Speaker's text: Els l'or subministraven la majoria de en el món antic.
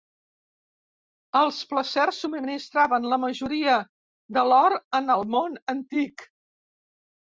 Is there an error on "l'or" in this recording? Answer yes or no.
yes